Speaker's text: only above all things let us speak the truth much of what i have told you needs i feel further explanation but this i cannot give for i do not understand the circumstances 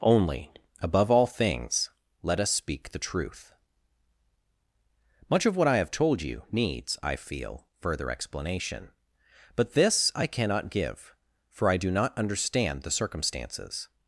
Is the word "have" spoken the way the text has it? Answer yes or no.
yes